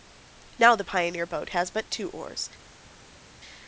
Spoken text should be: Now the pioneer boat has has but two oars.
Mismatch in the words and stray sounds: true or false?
true